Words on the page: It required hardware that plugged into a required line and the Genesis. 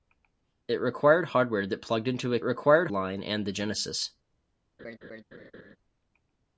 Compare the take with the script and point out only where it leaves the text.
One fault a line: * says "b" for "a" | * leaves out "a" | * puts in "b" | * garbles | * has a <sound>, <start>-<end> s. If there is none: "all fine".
* has a laugh, 4.8-5.8 s